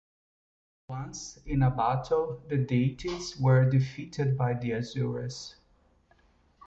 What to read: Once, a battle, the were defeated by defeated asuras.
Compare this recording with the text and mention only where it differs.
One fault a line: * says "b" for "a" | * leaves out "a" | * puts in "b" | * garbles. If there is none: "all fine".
* puts in "in"
* puts in "deities"
* says "the" for "defeated"